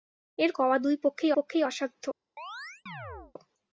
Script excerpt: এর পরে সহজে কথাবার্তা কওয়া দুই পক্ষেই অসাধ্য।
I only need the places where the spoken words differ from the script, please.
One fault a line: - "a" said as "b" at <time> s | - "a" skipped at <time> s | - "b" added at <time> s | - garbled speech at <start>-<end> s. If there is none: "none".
- "পরে সহজে কথাবার্তা" skipped at 0.5 s
- "পক্ষেই" added at 1.4 s